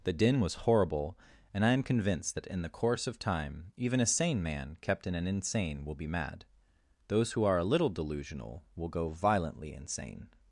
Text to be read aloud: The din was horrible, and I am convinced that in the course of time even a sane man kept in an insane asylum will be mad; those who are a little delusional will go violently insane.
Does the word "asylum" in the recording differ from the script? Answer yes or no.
yes